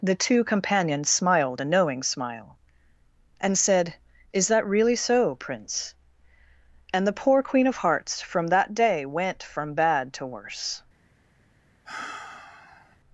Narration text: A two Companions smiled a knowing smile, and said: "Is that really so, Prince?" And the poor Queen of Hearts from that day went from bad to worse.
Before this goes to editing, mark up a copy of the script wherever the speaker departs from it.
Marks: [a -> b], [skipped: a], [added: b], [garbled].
[A -> The] two Companions smiled a knowing smile, and said: "Is that really so, Prince?" And the poor Queen of Hearts from that day went from bad to worse.